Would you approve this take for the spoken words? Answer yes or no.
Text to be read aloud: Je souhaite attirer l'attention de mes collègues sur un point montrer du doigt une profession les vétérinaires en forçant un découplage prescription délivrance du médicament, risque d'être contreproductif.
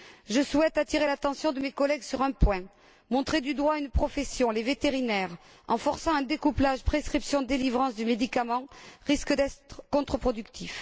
yes